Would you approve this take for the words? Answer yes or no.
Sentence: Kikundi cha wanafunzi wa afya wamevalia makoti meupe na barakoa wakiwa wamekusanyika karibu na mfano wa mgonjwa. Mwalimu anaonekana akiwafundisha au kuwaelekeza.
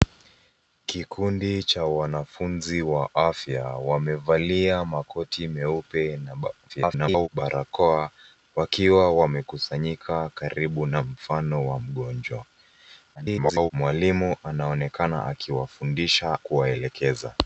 no